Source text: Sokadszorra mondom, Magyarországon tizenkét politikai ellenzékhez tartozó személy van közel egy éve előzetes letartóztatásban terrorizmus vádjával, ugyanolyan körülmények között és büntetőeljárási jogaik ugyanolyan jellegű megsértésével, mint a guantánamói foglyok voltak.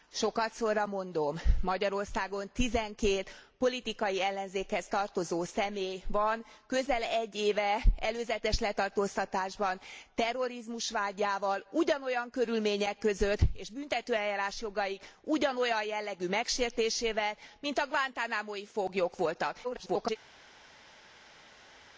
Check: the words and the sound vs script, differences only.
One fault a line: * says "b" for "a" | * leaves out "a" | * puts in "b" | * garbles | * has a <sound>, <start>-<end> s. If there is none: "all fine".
* garbles